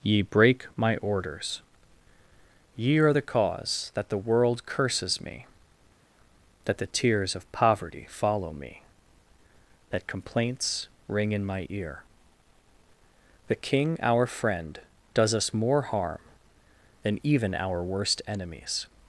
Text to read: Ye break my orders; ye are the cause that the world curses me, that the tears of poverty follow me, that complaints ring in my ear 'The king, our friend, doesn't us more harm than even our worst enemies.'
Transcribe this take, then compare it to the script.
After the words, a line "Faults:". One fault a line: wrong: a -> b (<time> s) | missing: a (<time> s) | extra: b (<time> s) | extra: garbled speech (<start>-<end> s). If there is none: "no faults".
Ye break my orders; ye are the cause that the world curses me, that the tears of poverty follow me, that complaints ring in my ear 'The king, our friend, does us more harm than even our worst enemies.'
Faults:
wrong: doesn't -> does (15.1 s)